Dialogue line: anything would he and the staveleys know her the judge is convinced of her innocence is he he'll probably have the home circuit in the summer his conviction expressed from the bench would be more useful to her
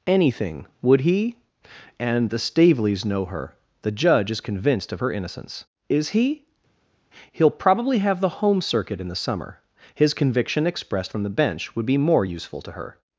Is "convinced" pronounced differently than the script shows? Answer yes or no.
no